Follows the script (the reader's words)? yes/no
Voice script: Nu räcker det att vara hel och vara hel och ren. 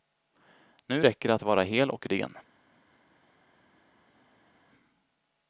no